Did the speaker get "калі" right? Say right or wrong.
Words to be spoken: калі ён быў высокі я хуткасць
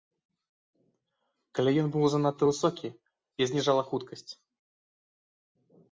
right